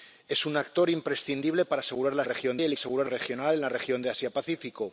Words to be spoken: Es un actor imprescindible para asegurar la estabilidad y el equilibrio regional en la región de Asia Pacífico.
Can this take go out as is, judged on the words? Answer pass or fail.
fail